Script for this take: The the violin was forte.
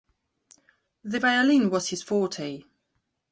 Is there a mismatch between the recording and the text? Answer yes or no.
yes